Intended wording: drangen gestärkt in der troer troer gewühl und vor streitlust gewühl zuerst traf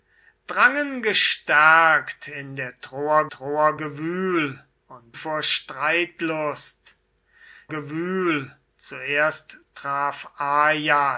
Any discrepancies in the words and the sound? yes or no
no